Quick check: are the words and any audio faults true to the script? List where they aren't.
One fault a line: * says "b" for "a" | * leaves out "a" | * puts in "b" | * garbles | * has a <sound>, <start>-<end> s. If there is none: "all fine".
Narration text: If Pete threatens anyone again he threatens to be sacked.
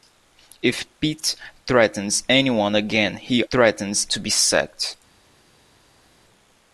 all fine